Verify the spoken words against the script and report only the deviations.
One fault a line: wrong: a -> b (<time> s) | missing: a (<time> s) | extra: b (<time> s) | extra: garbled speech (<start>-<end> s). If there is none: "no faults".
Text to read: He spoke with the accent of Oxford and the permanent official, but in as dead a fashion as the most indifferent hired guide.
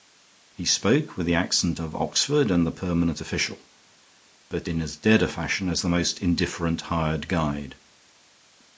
no faults